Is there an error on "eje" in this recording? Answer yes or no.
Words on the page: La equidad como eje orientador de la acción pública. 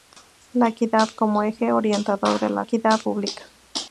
no